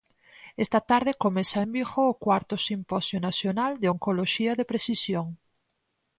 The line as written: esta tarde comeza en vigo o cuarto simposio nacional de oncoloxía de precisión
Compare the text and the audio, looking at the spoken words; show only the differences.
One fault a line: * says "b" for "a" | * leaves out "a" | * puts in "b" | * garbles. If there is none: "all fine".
all fine